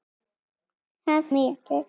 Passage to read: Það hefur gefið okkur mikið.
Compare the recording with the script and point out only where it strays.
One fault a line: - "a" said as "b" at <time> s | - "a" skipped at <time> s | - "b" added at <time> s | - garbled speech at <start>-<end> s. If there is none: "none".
- "hefur gefið okkur" skipped at 1.3 s